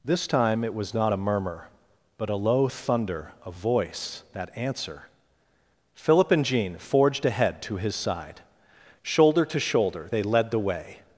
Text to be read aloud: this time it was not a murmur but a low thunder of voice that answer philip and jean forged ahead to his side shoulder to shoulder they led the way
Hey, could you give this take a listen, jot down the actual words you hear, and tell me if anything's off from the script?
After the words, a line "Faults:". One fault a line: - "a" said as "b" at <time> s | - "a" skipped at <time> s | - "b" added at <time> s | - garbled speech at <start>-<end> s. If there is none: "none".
this time it was not a murmur but a low thunder of voice that answer philip and jean forged ahead to his side shoulder to shoulder they led the way
Faults:
none